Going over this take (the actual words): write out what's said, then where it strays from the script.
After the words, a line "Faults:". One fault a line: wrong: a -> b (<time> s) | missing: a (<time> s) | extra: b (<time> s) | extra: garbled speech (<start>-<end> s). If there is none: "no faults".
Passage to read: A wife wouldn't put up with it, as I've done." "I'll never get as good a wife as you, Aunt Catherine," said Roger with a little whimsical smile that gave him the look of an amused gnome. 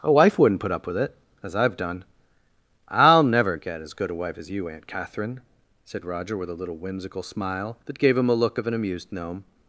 A wife wouldn't put up with it, as I've done." "I'll never get as good a wife as you, Aunt Catherine," said Roger with a little whimsical smile that gave him a look of an amused gnome.
Faults:
wrong: the -> a (8.3 s)